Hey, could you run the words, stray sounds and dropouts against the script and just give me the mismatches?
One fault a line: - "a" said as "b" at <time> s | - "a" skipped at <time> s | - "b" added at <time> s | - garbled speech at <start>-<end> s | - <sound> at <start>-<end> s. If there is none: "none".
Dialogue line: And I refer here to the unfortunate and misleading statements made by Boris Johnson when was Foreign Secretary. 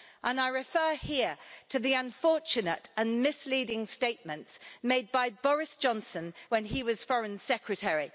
- "he" added at 6.6 s